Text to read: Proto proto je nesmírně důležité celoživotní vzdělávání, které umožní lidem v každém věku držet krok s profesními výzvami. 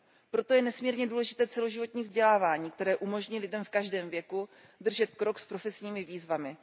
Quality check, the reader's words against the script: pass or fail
fail